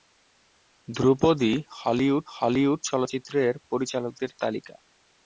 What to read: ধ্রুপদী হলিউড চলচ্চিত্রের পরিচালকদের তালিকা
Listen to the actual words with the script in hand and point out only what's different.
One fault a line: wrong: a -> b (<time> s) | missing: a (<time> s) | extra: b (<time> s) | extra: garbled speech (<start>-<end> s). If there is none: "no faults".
extra: হলিউড (2.3 s)